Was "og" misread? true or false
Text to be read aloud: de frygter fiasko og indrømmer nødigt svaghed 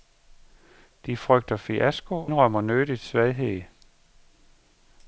true